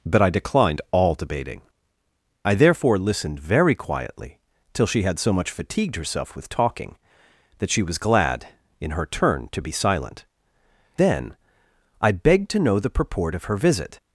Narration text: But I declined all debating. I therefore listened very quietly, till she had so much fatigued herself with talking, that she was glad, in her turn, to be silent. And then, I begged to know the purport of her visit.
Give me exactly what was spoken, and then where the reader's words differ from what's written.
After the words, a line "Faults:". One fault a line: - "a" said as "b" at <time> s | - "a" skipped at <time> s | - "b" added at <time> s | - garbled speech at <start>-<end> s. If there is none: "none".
But I declined all debating. I therefore listened very quietly, till she had so much fatigued herself with talking, that she was glad, in her turn, to be silent. Then, I begged to know the purport of her visit.
Faults:
- "And" skipped at 10.2 s